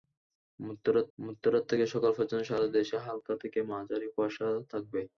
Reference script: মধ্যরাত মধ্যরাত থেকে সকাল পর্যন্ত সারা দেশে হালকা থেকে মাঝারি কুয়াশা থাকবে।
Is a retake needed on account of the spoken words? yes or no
no